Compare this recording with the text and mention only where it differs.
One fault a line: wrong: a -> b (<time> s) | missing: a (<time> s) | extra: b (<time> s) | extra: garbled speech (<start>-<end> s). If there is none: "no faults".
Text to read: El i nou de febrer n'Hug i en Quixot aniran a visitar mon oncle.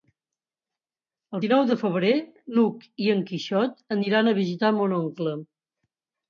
no faults